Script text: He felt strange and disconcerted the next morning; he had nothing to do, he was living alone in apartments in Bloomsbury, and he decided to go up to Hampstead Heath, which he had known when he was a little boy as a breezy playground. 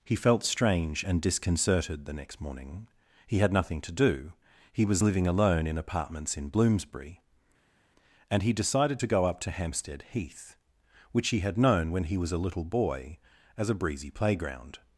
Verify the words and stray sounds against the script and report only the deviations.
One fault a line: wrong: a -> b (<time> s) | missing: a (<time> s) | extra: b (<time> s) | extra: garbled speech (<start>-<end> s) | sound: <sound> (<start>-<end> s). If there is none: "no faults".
no faults